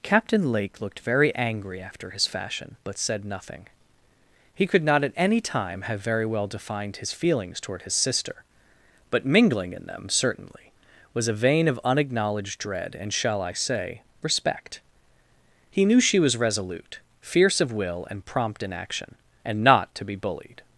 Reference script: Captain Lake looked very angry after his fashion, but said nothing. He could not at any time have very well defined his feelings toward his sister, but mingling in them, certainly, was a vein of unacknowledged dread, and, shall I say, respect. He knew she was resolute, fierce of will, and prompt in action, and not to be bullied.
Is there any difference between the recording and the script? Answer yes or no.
no